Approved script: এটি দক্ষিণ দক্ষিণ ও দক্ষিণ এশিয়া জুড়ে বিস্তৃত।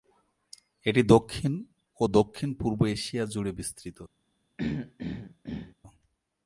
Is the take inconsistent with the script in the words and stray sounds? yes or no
yes